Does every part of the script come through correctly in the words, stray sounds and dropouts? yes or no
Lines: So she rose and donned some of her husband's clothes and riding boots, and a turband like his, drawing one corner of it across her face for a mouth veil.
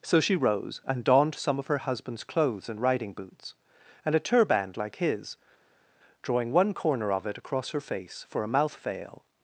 yes